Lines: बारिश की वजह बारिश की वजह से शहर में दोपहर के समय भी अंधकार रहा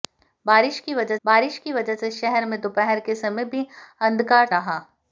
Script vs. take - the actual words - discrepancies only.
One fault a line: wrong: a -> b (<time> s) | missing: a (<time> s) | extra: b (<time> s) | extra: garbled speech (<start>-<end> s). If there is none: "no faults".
no faults